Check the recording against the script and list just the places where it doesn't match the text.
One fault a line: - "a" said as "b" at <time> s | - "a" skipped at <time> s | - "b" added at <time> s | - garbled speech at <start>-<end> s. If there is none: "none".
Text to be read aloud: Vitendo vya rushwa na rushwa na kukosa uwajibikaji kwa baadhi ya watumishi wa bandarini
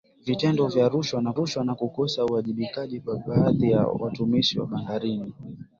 none